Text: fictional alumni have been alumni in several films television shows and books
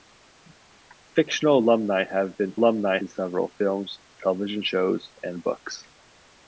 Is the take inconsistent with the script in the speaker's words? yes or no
no